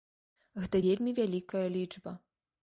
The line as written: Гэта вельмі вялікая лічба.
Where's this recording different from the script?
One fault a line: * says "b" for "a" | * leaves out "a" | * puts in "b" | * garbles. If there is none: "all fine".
all fine